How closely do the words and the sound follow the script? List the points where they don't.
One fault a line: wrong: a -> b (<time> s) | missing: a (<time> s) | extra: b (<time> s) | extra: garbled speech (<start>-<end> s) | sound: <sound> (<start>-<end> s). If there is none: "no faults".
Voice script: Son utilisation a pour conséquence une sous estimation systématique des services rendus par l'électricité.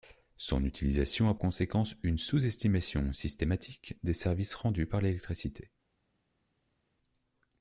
missing: pour (1.4 s)